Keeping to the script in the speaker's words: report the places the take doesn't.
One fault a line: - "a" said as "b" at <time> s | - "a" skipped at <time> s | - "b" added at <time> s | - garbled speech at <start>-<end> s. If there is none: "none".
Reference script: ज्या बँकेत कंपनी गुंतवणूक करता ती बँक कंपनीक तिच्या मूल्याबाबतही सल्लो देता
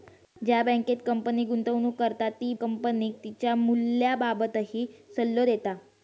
- "बँक" skipped at 2.5 s